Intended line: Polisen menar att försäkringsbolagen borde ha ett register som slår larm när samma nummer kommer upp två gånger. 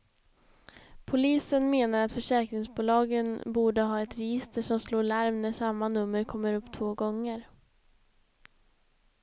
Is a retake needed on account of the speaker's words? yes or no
no